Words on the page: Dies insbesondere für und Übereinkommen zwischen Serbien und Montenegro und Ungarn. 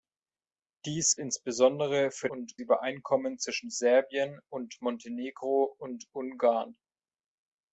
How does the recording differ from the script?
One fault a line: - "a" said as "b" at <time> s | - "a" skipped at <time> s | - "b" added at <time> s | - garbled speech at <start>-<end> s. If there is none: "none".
none